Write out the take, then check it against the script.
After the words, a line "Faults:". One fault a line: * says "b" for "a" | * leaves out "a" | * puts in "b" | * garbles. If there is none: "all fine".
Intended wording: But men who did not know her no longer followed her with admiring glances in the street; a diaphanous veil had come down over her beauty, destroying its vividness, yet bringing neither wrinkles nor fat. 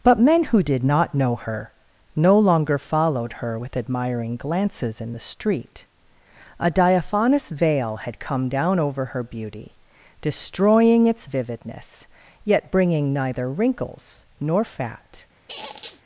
But men who did not know her no longer followed her with admiring glances in the street; a diaphanous veil had come down over her beauty, destroying its vividness, yet bringing neither wrinkles nor fat.
Faults:
all fine